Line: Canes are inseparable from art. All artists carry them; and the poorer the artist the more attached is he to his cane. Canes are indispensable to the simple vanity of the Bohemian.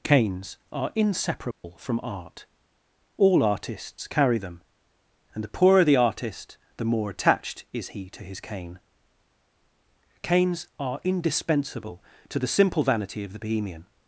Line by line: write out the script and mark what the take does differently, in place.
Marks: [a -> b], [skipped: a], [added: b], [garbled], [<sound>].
Canes are inseparable [dropout] from art. All artists carry them; and the poorer the artist the more attached is he to his cane. Canes are indispensable to the simple vanity of the Bohemian.